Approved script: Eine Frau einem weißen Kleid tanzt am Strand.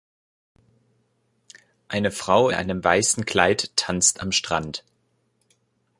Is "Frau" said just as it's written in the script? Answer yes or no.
yes